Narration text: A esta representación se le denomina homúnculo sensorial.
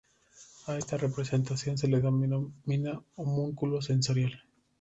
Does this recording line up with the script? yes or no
yes